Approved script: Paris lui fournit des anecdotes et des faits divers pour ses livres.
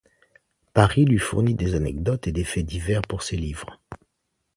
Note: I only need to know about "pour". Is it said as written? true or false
true